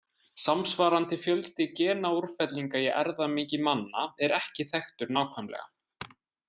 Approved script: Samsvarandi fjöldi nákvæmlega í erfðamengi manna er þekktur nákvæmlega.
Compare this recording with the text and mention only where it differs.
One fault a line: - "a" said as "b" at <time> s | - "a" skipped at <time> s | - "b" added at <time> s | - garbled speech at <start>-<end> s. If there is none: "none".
- "nákvæmlega" said as "genaúrfellinga" at 1.8 s
- "ekki" added at 4.4 s